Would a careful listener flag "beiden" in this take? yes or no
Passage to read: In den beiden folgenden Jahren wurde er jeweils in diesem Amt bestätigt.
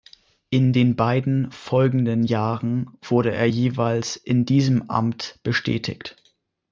no